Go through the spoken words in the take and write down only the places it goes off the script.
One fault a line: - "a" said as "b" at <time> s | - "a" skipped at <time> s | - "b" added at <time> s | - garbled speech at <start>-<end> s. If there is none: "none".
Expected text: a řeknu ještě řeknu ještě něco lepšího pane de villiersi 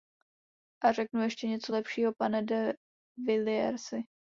- "řeknu ještě" skipped at 1.5 s